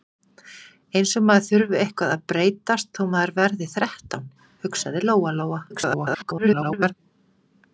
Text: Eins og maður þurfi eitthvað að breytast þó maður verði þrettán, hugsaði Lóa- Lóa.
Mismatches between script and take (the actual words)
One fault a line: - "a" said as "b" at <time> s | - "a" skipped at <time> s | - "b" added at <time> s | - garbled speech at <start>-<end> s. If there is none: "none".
- garbled speech at 5.7-6.9 s